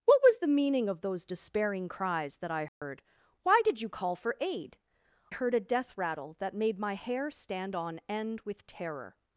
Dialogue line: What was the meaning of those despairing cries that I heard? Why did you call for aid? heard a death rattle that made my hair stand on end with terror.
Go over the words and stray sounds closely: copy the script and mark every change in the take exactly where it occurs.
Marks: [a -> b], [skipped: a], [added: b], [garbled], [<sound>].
What was the meaning of those despairing cries that I heard? [dropout] Why did you call for aid? heard a death rattle that made my hair stand on end with terror.